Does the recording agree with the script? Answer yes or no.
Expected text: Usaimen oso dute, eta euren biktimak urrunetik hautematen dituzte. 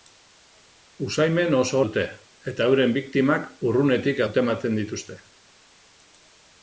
yes